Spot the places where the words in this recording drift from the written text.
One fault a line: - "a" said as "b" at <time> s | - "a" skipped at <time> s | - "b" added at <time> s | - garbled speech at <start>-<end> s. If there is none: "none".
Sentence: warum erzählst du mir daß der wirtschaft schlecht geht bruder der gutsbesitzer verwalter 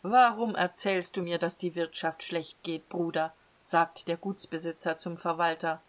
- "der" said as "die" at 1.6 s
- "sagt" added at 3.6 s
- "zum" added at 5.0 s